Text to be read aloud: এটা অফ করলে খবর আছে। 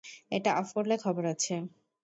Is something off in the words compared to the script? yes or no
no